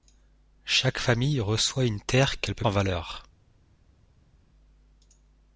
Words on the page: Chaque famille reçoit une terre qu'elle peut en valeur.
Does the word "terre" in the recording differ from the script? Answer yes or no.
no